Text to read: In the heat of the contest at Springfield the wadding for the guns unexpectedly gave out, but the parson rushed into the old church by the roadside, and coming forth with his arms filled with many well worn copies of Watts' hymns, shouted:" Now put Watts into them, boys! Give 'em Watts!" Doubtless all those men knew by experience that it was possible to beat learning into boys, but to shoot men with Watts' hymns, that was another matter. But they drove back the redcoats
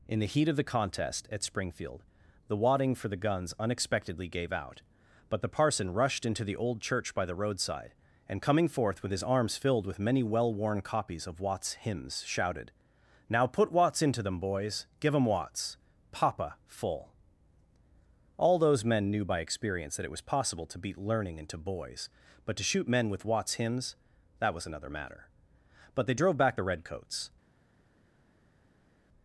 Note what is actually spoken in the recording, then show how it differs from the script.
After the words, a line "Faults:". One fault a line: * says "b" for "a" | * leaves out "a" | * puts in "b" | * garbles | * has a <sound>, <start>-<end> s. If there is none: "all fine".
In the heat of the contest at Springfield the wadding for the guns unexpectedly gave out, but the parson rushed into the old church by the roadside, and coming forth with his arms filled with many well worn copies of Watts' hymns, shouted:" Now put Watts into them, boys! Give 'em Watts!" Papa full all those men knew by experience that it was possible to beat learning into boys, but to shoot men with Watts' hymns, that was another matter. But they drove back the redcoats
Faults:
* says "Papa full" for "Doubtless"